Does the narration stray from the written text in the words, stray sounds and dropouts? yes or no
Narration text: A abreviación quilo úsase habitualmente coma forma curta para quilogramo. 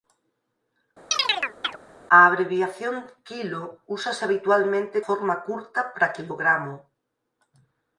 yes